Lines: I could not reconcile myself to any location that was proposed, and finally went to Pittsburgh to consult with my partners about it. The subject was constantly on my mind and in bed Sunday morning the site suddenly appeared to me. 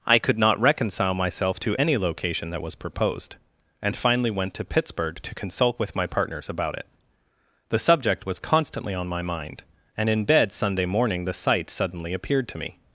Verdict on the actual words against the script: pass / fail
pass